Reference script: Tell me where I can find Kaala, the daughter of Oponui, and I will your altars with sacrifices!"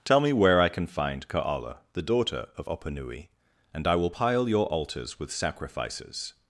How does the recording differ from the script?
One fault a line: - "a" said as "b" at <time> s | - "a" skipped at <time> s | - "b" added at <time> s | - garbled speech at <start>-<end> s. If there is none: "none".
- "pile" added at 4.1 s